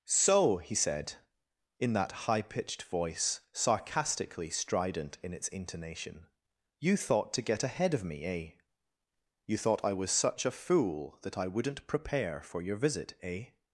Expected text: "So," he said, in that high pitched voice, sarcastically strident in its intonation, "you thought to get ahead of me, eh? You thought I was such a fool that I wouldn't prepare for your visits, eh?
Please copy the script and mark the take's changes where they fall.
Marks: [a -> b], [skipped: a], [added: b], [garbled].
"So," he said, in that high pitched voice, sarcastically strident in its intonation, "you thought to get ahead of me, eh? You thought I was such a fool that I wouldn't prepare for your [visits, -> visit] eh?